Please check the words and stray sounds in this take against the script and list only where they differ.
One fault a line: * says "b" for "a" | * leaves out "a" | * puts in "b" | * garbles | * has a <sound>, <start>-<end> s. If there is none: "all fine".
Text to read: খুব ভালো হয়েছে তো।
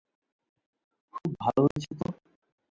* has a dropout, 1.7-1.8 s